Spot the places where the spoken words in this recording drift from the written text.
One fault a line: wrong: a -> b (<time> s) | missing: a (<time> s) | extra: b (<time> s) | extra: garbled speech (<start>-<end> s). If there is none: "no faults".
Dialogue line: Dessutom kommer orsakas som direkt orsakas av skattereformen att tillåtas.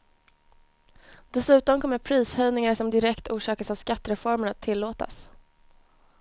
wrong: orsakas -> prishöjningar (2.0 s)